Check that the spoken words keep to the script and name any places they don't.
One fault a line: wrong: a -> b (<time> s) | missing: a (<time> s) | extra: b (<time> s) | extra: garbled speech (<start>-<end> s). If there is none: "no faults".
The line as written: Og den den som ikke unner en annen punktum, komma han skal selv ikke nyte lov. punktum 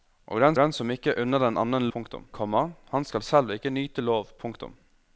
no faults